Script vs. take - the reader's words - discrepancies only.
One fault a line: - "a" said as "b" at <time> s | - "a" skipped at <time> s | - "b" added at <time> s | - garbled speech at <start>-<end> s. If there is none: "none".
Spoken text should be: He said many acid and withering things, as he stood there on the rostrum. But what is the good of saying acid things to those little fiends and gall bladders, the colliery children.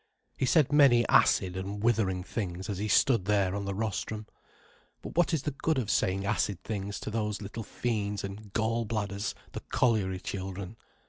none